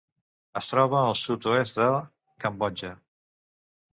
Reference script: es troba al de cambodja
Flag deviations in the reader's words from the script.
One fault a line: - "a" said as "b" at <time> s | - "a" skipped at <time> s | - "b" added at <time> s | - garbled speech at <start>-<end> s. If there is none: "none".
- "sud oest" added at 1.2 s